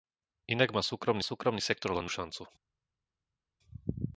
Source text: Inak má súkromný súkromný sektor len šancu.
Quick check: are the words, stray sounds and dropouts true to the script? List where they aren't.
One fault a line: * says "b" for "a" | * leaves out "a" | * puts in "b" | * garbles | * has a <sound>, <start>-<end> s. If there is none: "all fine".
all fine